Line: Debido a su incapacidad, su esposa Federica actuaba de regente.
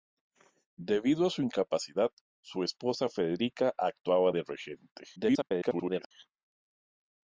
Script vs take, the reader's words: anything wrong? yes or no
yes